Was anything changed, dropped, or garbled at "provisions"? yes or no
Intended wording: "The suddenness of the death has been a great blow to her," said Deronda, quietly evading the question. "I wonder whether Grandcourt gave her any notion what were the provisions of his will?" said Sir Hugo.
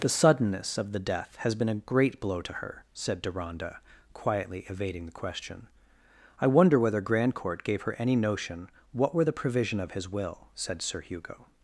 yes